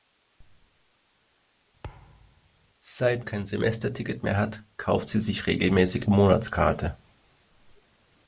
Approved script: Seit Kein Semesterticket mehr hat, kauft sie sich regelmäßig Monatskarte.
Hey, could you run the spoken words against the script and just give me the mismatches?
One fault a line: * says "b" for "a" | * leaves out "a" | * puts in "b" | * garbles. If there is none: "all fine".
all fine